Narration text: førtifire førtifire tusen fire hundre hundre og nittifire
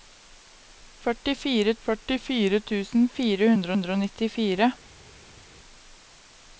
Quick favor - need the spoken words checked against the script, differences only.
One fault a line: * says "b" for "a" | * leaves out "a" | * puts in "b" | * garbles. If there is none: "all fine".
all fine